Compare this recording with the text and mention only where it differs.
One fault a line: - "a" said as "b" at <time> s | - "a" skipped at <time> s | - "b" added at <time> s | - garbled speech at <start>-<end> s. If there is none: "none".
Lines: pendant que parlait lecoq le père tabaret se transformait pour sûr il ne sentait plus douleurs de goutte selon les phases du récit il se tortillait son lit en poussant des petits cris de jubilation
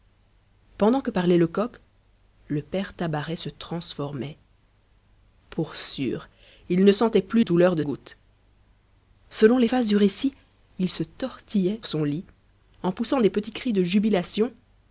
none